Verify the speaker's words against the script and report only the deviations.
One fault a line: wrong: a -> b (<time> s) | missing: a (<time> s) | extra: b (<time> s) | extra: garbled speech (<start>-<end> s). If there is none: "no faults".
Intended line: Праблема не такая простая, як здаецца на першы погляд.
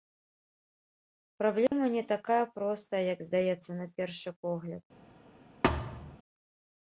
no faults